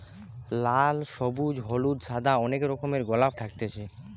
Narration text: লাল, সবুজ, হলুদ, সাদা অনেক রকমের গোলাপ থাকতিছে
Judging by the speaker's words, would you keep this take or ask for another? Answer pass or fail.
pass